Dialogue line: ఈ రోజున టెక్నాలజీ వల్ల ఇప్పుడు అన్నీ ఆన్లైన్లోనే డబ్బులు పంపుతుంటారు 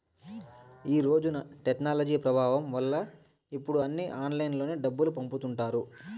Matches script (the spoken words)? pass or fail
fail